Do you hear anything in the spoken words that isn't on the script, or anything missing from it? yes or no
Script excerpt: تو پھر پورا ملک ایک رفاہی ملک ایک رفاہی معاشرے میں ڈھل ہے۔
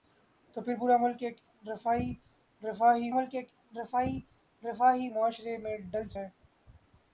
no